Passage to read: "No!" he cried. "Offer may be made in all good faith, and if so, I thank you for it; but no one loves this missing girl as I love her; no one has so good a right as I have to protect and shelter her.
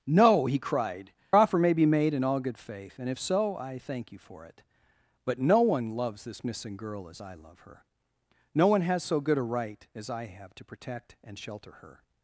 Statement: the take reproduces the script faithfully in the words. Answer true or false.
true